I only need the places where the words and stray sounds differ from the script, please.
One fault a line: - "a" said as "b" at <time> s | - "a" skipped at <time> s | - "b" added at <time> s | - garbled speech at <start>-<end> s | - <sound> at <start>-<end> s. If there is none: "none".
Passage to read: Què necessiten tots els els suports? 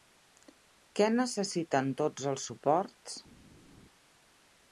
- "els" skipped at 2.5 s